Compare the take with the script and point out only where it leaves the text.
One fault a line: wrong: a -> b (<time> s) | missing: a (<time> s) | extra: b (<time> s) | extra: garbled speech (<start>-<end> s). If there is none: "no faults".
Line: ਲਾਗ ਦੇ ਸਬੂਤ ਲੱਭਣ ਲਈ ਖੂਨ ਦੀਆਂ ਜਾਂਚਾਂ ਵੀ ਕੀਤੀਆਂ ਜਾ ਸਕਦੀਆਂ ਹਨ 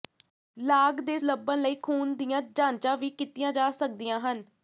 missing: ਸਬੂਤ (1.2 s)